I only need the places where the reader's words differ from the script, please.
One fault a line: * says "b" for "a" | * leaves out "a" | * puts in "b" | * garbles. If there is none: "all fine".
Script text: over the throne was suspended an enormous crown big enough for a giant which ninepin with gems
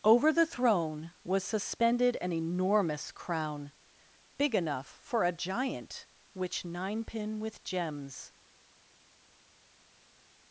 all fine